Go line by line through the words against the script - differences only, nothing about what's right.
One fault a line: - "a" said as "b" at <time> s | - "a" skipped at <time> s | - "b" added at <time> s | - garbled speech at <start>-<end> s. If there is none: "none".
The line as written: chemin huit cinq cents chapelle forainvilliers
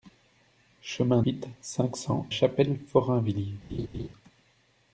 none